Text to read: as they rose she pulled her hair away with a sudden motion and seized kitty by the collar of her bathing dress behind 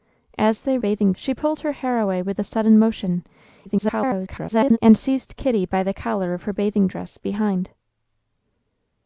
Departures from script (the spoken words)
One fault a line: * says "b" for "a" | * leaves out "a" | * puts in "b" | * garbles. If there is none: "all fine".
* says "bathing" for "rose"
* garbles